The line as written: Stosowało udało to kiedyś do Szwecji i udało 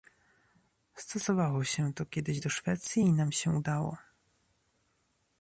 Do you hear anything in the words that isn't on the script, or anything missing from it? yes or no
yes